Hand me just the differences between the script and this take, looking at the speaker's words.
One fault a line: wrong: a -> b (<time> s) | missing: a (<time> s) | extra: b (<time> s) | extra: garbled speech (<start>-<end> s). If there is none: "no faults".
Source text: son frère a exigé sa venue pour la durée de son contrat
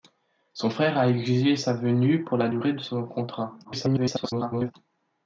extra: garbled speech (3.6-4.7 s)